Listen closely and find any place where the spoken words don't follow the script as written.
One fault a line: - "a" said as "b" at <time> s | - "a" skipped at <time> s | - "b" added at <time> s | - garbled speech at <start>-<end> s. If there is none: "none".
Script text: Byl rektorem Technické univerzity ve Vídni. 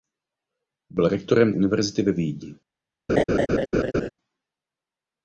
- "Technické" skipped at 1.5 s